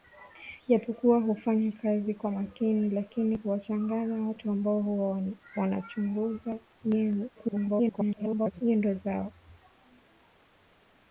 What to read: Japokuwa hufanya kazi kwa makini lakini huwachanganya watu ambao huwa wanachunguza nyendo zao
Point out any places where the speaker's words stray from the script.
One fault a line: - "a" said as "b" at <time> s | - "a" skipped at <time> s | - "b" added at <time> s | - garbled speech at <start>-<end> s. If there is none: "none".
- garbled speech at 7.4-8.6 s